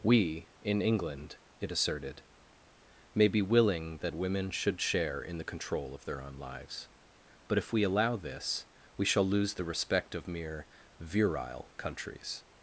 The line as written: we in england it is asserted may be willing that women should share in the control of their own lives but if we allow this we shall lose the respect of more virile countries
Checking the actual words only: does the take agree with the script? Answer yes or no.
no